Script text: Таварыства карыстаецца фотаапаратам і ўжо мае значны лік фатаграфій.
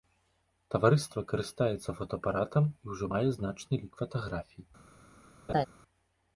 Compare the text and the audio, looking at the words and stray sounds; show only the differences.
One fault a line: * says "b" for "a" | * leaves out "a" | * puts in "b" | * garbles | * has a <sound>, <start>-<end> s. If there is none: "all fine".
* has a laugh, 5.5-5.7 s